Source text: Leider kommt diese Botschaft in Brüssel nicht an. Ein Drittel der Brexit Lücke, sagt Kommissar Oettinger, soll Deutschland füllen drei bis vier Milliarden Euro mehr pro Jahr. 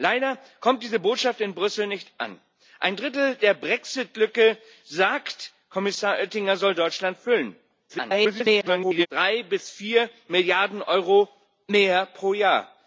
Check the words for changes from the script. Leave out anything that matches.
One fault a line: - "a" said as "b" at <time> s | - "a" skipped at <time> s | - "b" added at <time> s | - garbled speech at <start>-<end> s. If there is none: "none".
- garbled speech at 7.9-9.1 s